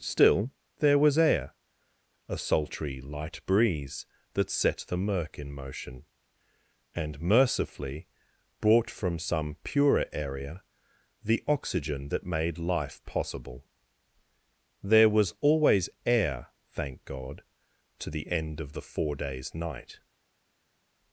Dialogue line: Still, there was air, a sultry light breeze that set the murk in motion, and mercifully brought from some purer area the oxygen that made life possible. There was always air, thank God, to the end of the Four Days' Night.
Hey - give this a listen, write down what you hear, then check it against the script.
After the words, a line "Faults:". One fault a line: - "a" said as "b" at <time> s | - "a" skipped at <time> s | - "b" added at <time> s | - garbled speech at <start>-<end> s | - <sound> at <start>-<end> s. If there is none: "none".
Still, there was air, a sultry light breeze that set the murk in motion, and mercifully brought from some purer area the oxygen that made life possible. There was always air, thank God, to the end of the Four Days' Night.
Faults:
none